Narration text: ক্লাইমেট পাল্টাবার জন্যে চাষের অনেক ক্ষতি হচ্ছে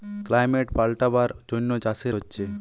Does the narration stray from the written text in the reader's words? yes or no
yes